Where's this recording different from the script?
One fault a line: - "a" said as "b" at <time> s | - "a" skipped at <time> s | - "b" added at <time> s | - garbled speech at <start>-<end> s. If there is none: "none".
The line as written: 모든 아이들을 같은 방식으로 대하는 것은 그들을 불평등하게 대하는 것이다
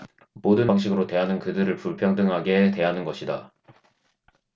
- "아이들을 같은" skipped at 0.7 s
- "것은" skipped at 1.4 s